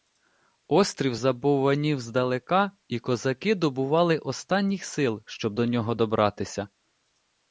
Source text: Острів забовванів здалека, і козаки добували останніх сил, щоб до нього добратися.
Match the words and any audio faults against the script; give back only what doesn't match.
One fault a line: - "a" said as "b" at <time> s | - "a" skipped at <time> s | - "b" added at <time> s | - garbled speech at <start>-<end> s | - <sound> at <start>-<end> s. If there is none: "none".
none